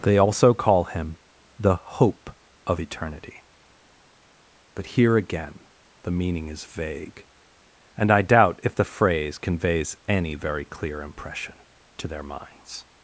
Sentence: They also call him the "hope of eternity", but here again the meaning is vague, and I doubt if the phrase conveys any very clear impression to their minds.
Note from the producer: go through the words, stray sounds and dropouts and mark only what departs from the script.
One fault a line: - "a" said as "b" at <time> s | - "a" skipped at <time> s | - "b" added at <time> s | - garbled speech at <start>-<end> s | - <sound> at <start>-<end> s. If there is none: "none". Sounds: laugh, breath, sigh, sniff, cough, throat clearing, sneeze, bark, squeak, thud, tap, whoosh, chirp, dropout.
none